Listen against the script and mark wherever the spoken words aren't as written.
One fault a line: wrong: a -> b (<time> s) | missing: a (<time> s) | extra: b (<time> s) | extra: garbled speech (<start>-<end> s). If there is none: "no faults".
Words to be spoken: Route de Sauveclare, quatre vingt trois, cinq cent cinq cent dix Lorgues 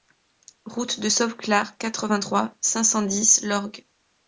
missing: cinq cent (3.0 s)